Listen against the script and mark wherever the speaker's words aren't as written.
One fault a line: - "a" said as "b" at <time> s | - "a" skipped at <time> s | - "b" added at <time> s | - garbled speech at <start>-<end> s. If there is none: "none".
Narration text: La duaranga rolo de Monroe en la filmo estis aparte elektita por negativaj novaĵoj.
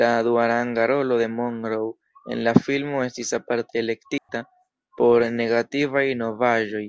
none